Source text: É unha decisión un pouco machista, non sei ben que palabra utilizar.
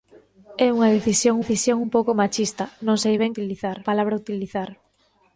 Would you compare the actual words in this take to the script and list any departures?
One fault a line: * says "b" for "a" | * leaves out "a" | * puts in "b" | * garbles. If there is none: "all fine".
* puts in "decisión"
* says "utilizar" for "que"